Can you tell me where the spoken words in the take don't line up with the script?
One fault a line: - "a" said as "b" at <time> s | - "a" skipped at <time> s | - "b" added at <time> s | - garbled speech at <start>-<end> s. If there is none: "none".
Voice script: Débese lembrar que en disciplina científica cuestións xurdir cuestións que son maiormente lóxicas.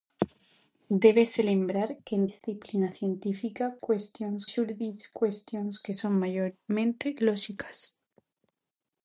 none